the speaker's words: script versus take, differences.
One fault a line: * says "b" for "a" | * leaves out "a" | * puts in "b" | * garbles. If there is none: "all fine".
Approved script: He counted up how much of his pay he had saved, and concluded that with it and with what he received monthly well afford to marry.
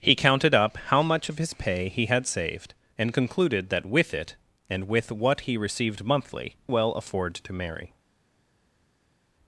all fine